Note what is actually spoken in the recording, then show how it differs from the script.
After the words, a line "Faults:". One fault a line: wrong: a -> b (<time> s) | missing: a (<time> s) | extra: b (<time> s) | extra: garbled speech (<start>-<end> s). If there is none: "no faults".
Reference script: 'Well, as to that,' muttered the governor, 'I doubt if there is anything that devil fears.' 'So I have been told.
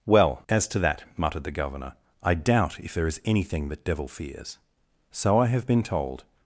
'Well, as to that,' muttered the governor, 'I doubt if there is anything that devil fears.' 'So I have been told.
Faults:
no faults